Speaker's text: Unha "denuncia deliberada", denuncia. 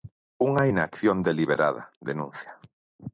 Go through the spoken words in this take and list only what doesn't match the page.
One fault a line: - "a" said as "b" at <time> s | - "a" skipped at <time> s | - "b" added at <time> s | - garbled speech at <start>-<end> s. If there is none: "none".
- "denuncia" said as "inacción" at 0.7 s